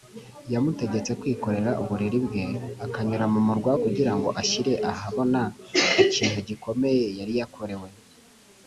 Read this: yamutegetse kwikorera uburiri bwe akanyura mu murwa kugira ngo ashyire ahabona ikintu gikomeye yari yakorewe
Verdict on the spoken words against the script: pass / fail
pass